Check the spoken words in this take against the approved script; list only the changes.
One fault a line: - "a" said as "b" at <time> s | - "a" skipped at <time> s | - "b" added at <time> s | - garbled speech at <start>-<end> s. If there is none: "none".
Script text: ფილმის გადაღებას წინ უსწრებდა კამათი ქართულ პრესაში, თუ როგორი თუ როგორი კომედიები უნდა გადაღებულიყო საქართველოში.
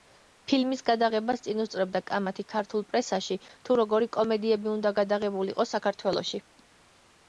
- "თუ როგორი" skipped at 4.1 s